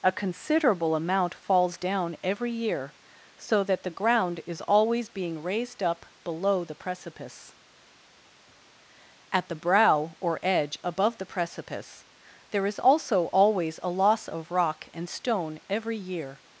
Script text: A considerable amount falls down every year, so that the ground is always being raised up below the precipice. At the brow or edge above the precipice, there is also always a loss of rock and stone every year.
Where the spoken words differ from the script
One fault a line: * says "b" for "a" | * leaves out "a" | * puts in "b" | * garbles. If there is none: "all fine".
all fine